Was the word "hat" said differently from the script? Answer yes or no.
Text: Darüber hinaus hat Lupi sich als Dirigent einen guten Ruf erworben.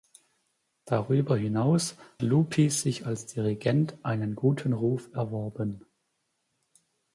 yes